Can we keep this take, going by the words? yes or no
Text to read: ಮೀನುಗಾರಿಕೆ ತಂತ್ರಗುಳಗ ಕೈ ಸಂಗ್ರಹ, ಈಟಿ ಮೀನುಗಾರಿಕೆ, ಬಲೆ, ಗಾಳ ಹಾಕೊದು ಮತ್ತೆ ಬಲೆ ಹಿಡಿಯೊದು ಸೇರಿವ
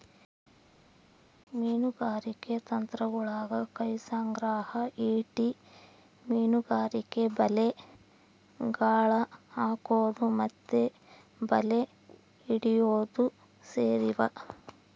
yes